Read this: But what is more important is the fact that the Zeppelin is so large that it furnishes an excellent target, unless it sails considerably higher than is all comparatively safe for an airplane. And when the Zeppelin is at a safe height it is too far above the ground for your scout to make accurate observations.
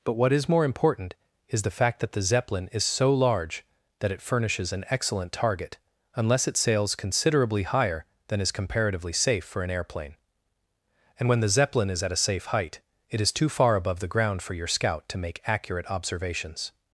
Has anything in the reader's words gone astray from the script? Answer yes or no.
yes